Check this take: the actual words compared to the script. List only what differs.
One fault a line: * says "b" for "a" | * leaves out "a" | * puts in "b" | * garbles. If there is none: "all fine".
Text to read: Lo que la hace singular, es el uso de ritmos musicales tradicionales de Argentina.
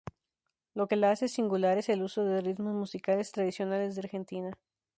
all fine